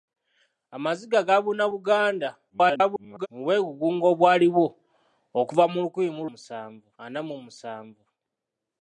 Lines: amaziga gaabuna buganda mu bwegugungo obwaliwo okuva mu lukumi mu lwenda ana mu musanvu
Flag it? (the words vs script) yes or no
yes